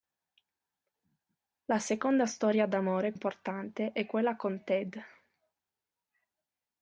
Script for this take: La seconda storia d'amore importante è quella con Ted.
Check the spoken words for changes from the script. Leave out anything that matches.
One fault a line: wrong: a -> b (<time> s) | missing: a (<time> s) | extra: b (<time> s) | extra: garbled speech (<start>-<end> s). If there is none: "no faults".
no faults